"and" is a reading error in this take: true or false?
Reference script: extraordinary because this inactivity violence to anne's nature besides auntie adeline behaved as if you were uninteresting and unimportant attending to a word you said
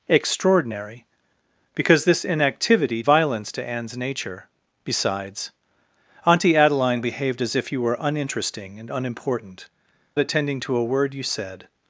false